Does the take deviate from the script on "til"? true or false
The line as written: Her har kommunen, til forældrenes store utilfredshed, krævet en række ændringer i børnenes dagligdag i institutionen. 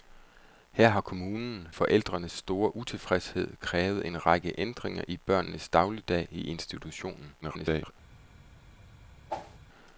true